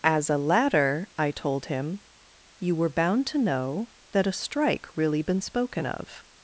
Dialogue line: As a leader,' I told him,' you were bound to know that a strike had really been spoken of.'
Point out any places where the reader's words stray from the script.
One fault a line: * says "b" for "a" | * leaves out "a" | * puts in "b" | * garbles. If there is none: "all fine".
* says "ladder" for "leader"
* leaves out "had"